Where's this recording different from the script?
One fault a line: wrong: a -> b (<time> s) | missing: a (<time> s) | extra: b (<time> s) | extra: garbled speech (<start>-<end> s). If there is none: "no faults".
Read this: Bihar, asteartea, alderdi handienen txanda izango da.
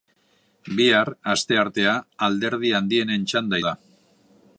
missing: izango (3.6 s)